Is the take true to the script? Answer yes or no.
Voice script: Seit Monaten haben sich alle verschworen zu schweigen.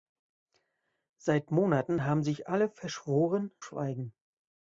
no